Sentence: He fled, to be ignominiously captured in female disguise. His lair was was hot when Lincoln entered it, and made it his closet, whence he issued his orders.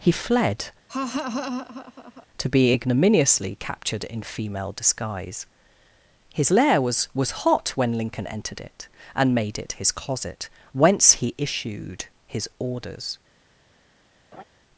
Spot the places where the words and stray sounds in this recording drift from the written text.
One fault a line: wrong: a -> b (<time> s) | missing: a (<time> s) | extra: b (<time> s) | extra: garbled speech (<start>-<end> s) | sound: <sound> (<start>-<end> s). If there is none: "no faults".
sound: laugh (0.9-2.3 s)
sound: laugh (14.3-14.4 s)